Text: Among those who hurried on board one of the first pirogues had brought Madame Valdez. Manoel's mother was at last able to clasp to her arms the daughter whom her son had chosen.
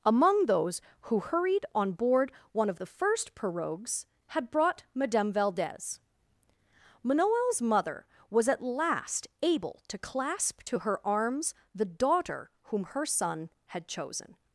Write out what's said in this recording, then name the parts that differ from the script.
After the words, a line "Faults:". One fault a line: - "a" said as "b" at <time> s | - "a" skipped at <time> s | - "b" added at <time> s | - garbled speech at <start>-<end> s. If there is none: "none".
Among those who hurried on board one of the first pirogues had brought Madame Valdez. Manoel's mother was at last able to clasp to her arms the daughter whom her son had chosen.
Faults:
none